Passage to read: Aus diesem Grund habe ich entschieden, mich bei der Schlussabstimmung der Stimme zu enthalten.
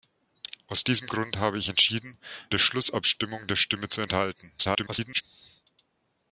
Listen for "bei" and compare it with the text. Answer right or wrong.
wrong